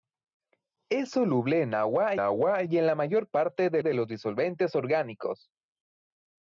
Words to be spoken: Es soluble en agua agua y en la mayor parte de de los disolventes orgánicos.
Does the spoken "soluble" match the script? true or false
true